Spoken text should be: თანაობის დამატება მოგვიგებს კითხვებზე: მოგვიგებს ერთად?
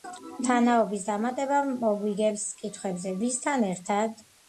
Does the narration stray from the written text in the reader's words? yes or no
yes